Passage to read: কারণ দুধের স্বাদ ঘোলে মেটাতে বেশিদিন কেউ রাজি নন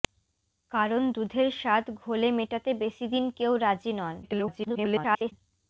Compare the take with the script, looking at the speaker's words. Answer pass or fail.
fail